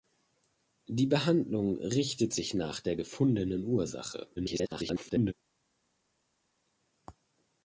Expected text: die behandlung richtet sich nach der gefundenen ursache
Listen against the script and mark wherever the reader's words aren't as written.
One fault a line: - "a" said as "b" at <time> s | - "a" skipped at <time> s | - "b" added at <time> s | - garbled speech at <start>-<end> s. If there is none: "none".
- garbled speech at 4.4-5.3 s